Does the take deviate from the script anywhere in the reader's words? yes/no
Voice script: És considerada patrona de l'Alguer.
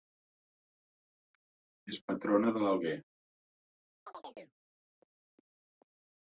yes